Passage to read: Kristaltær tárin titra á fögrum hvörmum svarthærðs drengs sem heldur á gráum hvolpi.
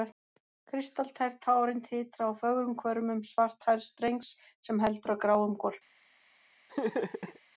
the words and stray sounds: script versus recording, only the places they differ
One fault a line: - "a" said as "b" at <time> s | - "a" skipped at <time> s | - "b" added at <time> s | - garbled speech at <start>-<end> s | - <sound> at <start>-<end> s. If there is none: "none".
- laugh at 6.7-7.4 s